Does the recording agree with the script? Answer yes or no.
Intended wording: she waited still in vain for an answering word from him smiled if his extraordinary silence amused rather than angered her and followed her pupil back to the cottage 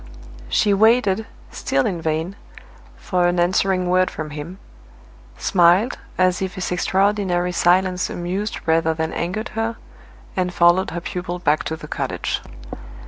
no